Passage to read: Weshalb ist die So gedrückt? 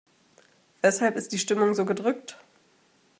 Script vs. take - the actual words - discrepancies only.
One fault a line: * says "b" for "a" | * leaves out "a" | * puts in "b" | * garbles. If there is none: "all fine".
* puts in "Stimmung"